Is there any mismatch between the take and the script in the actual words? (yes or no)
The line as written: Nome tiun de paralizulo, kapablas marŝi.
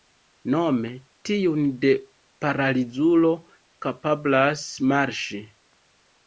no